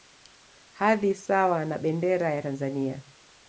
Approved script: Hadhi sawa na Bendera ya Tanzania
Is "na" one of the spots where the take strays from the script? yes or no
no